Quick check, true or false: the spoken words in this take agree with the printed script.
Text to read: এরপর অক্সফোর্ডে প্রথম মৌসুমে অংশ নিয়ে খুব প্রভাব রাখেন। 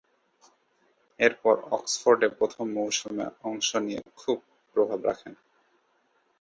true